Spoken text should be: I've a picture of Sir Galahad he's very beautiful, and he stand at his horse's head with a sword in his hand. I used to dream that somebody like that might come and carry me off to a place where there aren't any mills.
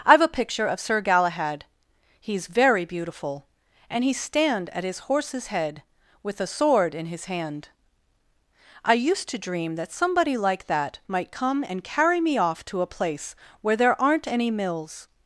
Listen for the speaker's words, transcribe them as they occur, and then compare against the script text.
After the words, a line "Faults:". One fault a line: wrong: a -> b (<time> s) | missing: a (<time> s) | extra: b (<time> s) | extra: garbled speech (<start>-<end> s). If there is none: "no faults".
I've a picture of Sir Galahad he's very beautiful, and he stand at his horse's head with a sword in his hand. I used to dream that somebody like that might come and carry me off to a place where there aren't any mills.
Faults:
no faults